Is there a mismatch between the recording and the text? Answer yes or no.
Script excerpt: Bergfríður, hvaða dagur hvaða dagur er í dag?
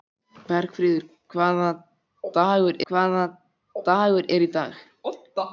no